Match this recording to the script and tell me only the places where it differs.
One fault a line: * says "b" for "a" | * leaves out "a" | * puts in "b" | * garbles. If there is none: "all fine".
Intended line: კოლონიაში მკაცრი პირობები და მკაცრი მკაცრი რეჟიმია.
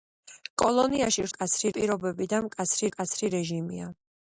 all fine